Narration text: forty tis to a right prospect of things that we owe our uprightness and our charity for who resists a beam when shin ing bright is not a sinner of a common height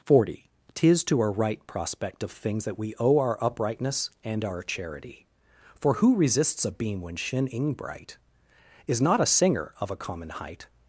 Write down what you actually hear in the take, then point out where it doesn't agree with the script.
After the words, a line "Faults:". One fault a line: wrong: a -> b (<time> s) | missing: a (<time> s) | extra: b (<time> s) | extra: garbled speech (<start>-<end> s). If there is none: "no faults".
forty tis to a right prospect of things that we owe our uprightness and our charity for who resists a beam when shin ing bright is not a singer of a common height
Faults:
wrong: sinner -> singer (9.3 s)